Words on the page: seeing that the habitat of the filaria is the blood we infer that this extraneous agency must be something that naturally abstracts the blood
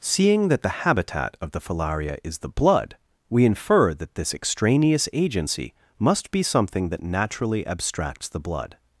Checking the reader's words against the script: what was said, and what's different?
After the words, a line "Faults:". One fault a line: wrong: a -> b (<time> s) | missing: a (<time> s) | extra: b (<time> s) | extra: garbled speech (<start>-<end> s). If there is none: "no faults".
seeing that the habitat of the filaria is the blood we infer that this extraneous agency must be something that naturally abstracts the blood
Faults:
no faults